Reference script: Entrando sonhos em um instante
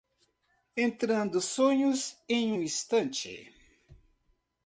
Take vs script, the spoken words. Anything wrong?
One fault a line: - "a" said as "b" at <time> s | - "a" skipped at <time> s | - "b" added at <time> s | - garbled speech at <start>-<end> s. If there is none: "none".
none